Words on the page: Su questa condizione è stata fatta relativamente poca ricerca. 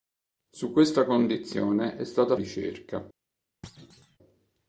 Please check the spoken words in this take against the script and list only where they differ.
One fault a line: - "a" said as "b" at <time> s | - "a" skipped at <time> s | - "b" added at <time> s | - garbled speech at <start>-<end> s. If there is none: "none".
- "fatta relativamente poca" skipped at 2.4 s